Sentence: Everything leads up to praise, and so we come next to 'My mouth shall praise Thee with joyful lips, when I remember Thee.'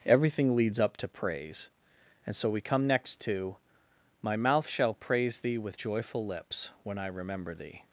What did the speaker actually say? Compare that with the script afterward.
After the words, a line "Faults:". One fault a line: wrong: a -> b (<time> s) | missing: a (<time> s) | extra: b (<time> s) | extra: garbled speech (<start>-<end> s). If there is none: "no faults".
Everything leads up to praise, and so we come next to 'My mouth shall praise Thee with joyful lips, when I remember Thee.'
Faults:
no faults